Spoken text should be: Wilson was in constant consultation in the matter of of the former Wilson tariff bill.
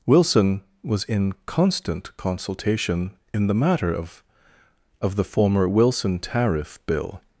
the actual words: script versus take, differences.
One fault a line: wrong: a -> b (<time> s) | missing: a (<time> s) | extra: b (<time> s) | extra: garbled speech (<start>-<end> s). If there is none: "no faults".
no faults